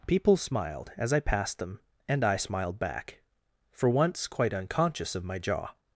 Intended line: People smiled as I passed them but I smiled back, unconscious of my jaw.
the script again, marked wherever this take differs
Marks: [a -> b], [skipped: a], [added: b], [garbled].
People smiled as I passed them [but -> and] I smiled back, [added: for once quite] unconscious of my jaw.